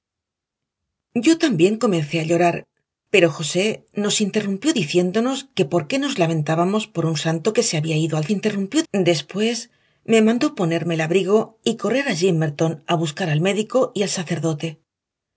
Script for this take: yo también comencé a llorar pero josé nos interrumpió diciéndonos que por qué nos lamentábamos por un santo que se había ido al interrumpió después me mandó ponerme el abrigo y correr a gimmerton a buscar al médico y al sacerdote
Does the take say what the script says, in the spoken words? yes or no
yes